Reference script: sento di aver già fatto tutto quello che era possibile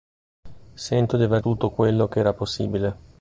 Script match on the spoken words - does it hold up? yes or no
no